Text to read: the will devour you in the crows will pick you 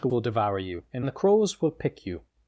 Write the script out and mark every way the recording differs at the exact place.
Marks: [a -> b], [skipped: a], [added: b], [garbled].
the will devour you in the crows will pick you